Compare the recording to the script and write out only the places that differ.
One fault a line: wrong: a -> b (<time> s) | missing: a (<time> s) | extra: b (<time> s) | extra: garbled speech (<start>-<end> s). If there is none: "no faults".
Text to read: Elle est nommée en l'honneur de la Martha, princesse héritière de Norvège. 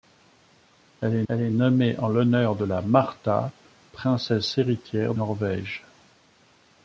extra: elle est (1.3 s)
missing: de (5.1 s)